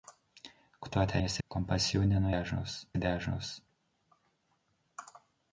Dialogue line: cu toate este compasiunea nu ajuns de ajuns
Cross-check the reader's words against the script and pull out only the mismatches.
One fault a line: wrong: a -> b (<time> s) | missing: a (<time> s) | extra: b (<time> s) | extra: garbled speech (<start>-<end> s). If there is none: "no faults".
no faults